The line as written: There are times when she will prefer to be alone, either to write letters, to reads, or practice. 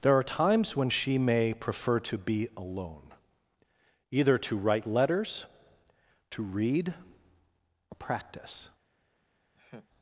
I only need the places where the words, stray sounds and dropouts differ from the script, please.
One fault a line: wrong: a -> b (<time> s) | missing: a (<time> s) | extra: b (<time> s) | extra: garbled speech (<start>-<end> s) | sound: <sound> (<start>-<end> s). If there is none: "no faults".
wrong: will -> may (1.2 s)
wrong: reads -> read (6.4 s)
sound: laugh (9.5-9.9 s)